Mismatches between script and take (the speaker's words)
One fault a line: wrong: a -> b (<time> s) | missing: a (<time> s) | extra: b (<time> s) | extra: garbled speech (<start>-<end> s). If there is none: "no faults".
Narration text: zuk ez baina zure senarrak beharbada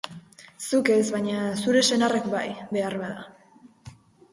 extra: bai (2.4 s)